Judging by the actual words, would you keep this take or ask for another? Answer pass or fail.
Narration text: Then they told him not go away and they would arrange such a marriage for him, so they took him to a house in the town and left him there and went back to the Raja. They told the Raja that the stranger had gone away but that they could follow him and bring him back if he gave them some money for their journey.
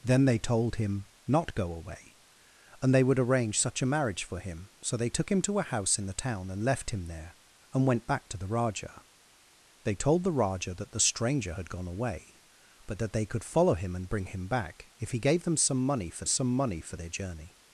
fail